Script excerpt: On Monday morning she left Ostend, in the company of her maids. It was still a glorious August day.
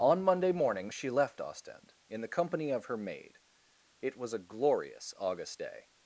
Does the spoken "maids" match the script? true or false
false